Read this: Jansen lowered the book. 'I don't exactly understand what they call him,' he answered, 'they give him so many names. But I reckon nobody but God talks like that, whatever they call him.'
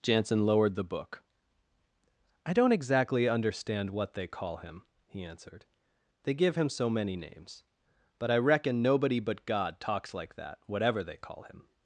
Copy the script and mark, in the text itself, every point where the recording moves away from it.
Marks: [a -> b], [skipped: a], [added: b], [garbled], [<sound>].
Jansen lowered the book. 'I don't exactly understand what they call him,' he answered, 'they give him so many names. But I reckon nobody but God talks like that, whatever they call him.'